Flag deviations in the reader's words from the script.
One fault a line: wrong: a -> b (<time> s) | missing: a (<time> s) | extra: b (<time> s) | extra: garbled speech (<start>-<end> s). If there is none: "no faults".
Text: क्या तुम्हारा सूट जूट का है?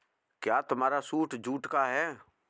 no faults